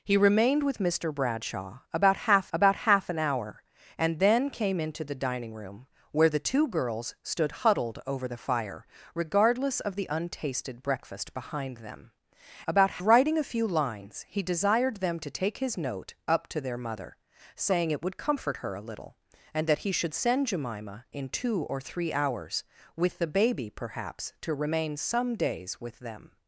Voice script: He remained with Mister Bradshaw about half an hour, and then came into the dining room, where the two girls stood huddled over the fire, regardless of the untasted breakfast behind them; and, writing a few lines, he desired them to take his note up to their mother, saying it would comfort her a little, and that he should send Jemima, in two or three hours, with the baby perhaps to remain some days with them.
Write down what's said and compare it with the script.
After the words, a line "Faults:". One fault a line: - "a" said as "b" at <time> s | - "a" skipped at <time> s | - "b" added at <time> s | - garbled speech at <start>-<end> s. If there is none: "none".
He remained with Mister Bradshaw about half about half an hour, and then came into the dining room, where the two girls stood huddled over the fire, regardless of the untasted breakfast behind them; about, writing a few lines, he desired them to take his note up to their mother, saying it would comfort her a little, and that he should send Jemima, in two or three hours, with the baby perhaps to remain some days with them.
Faults:
- "about half" added at 2.5 s
- "and" said as "about" at 12.7 s